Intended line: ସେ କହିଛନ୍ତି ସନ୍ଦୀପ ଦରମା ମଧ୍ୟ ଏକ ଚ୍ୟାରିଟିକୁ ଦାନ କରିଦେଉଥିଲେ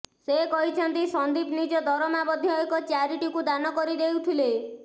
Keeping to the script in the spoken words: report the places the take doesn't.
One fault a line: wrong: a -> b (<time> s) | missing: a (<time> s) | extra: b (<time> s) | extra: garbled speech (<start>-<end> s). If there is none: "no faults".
extra: ନିଜ (1.6 s)